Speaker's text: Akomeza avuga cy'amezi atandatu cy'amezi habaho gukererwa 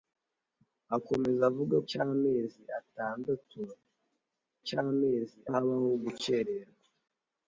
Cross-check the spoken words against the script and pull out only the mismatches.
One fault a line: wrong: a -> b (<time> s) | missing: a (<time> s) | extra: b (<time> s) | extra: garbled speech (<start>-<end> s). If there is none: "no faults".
no faults